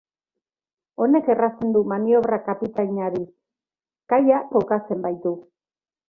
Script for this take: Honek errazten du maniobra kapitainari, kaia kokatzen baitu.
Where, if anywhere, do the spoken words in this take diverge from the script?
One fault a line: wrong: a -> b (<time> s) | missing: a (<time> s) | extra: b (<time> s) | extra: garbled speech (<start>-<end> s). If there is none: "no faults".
no faults